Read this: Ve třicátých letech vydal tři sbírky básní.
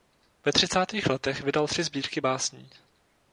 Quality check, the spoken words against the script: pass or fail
pass